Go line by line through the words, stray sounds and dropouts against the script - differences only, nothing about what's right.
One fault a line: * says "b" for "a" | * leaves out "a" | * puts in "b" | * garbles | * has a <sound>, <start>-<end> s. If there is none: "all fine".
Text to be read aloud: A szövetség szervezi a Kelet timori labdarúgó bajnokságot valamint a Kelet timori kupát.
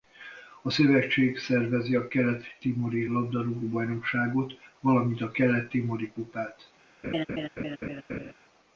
* has a laugh, 7.0-8.3 s